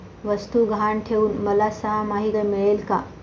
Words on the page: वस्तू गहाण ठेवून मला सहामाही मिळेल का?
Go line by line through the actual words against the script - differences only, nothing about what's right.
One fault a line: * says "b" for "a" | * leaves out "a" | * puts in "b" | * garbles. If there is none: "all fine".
all fine